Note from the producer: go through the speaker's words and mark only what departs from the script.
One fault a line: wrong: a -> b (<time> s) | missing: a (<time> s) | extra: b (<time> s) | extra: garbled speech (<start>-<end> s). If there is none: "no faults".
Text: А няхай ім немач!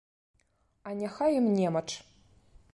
no faults